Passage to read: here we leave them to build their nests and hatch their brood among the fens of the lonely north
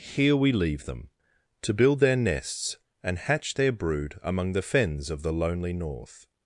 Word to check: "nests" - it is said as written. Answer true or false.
true